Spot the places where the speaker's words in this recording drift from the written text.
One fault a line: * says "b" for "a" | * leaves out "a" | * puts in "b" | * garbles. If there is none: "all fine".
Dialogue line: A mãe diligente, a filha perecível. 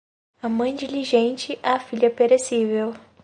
all fine